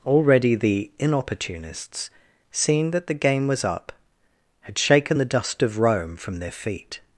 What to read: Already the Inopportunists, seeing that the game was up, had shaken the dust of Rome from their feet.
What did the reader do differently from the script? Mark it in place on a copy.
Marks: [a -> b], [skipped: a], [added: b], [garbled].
Already the Inopportunists, seeing that the game was up, had shaken the dust of Rome from their feet.